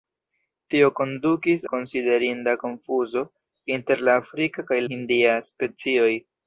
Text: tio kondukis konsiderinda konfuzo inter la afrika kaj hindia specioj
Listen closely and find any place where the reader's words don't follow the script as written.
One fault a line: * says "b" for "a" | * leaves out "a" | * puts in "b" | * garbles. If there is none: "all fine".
all fine